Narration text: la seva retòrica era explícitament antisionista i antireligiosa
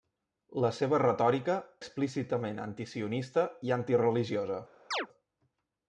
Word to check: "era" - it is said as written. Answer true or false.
false